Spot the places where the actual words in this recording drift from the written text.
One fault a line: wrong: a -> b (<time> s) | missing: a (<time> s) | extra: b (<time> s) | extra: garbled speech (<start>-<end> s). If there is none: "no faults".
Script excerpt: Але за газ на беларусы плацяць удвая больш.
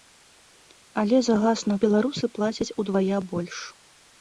no faults